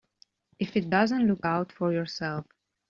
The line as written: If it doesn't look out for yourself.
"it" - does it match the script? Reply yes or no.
yes